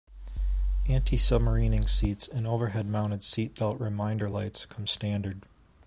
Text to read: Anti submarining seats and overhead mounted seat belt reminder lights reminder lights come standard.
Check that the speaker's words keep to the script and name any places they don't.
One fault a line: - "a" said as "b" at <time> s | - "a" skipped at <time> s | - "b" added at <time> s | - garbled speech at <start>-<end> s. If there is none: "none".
- "reminder lights" skipped at 4.6 s